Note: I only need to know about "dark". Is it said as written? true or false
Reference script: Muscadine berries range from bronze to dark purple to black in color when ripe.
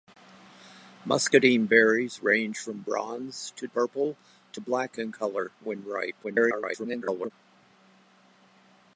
false